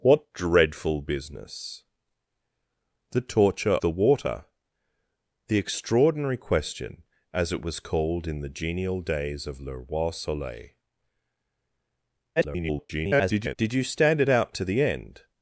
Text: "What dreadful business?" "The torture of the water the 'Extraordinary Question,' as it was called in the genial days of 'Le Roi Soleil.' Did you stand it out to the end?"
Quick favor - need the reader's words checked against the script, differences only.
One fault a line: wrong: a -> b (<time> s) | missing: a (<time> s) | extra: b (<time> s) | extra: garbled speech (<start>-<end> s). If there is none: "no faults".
missing: of (3.8 s)
extra: garbled speech (12.4-13.6 s)